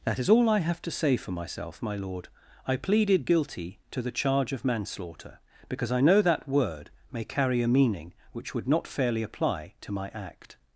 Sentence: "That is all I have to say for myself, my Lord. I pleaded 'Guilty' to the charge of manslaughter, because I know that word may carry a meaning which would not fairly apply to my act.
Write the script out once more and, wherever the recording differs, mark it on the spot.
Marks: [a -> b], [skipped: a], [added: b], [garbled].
"That is all I have to say for myself, my Lord. I pleaded 'Guilty' to the charge of manslaughter, because I know that word may carry a meaning which would not fairly apply to my act.